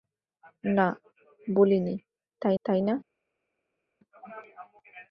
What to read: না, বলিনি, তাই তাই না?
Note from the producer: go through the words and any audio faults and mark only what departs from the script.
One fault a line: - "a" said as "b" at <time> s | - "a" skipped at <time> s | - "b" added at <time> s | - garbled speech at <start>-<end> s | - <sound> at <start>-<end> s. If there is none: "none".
none